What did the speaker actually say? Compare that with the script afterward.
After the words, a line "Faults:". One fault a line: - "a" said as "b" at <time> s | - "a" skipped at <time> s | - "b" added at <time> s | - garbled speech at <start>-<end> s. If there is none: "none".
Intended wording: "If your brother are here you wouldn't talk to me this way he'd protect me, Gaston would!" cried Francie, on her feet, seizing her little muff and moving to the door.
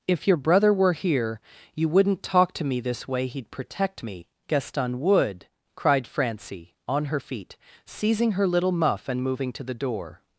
"If your brother were here you wouldn't talk to me this way he'd protect me, Gaston would!" cried Francie, on her feet, seizing her little muff and moving to the door.
Faults:
- "are" said as "were" at 0.7 s